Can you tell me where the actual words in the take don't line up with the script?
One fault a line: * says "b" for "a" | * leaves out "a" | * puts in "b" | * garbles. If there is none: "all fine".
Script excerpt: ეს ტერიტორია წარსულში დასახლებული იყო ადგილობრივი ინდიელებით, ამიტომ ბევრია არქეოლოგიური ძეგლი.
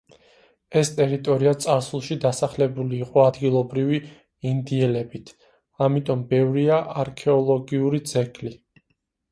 all fine